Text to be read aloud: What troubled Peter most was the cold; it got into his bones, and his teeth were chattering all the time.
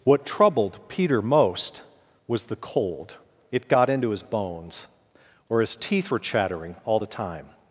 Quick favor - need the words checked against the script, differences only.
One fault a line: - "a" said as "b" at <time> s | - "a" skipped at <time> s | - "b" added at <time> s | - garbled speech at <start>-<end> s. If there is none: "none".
- "and" said as "or" at 5.5 s